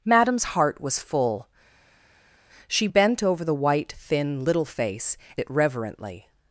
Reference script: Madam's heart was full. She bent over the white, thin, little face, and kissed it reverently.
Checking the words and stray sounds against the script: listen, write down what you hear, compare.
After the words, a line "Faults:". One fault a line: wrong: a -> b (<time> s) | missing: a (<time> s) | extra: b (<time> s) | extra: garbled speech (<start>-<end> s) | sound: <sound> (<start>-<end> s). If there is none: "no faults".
Madam's heart was full. She bent over the white, thin, little face, it reverently.
Faults:
missing: and kissed (5.2 s)